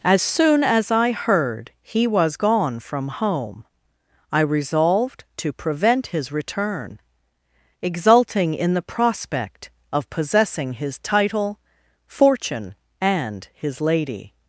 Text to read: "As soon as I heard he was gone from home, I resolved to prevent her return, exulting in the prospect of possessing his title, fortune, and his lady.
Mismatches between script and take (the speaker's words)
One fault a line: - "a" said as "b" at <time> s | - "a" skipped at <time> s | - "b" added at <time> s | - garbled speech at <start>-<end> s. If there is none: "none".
- "her" said as "his" at 6.1 s